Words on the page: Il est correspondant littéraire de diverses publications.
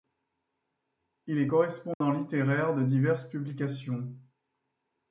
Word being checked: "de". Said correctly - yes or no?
yes